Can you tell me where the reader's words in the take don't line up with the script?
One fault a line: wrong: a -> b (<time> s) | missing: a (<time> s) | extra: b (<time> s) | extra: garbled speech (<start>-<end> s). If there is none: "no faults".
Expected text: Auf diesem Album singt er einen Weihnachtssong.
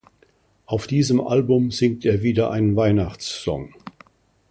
extra: wieder (2.2 s)